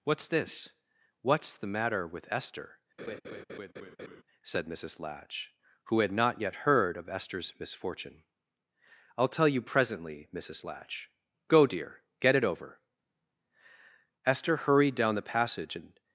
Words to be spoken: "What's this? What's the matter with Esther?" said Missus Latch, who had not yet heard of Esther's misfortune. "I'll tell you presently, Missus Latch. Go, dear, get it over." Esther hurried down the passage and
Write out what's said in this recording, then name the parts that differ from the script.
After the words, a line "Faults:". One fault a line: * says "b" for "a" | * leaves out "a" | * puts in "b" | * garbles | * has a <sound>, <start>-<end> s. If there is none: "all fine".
"What's this? What's the matter with Esther?" said Missus Latch, who had not yet heard of Esther's misfortune. "I'll tell you presently, Missus Latch. Go, dear, get it over." Esther hurried down the passage and
Faults:
* has a laugh, 3.0-4.2 s